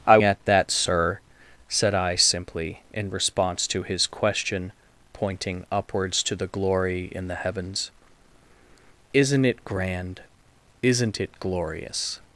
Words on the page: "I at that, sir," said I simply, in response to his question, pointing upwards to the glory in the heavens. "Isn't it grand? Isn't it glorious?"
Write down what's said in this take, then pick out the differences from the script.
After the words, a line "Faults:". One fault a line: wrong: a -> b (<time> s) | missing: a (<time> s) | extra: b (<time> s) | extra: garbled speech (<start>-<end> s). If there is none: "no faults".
"I at that, sir," said I simply, in response to his question, pointing upwards to the glory in the heavens. "Isn't it grand? Isn't it glorious?"
Faults:
no faults